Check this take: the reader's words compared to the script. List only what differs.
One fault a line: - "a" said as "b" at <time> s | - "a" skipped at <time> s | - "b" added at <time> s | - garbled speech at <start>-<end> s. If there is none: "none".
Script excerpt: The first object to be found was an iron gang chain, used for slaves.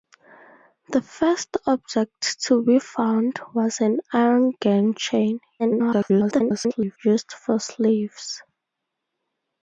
- garbled speech at 5.6-7.0 s